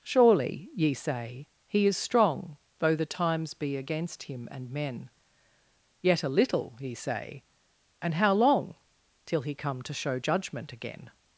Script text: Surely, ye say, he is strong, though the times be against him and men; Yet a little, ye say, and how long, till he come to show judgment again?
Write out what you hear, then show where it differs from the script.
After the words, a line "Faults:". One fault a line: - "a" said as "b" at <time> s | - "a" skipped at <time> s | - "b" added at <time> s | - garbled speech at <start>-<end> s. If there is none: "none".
Surely, ye say, he is strong, though the times be against him and men; Yet a little, ye say, and how long, till he come to show judgment again?
Faults:
none